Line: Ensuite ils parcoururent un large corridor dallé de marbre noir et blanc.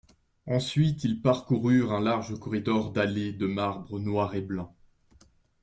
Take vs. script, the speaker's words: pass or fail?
pass